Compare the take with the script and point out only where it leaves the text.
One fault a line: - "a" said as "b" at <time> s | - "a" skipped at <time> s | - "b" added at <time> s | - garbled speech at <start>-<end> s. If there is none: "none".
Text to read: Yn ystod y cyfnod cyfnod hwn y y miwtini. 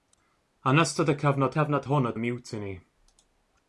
none